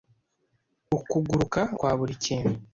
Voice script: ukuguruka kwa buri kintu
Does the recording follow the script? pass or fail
pass